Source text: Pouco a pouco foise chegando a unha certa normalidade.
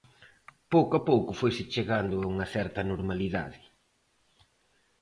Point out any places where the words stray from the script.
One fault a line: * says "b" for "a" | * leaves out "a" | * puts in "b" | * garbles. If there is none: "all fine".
all fine